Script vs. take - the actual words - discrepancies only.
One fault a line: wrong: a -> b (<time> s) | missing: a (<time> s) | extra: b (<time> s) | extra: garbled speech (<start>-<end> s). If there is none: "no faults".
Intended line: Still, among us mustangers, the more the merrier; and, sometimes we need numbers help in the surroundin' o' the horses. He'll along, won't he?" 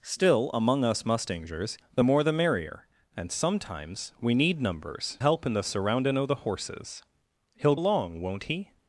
no faults